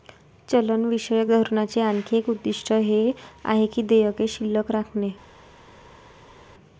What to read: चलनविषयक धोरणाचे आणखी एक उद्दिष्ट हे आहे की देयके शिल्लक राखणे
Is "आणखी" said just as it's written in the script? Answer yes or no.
yes